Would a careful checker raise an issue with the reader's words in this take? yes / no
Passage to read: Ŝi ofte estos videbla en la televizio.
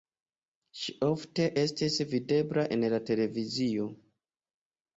yes